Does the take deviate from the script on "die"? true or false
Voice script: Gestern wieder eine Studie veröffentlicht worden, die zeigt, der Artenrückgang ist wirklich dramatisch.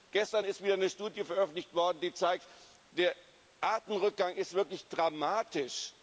false